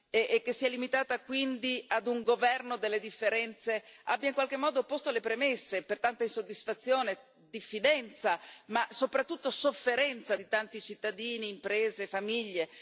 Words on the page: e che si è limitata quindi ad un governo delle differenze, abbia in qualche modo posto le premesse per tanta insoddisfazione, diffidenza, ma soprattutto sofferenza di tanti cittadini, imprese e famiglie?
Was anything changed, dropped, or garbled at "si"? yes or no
no